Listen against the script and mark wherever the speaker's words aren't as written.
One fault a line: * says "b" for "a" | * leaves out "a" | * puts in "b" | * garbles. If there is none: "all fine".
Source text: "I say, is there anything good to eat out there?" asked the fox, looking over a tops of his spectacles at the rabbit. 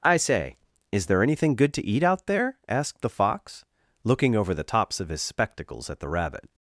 * says "the" for "a"